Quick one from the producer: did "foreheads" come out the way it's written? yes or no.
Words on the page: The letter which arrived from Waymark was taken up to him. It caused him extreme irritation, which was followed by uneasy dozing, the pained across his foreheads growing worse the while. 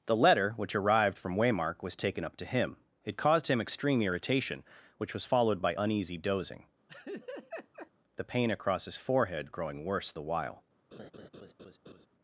no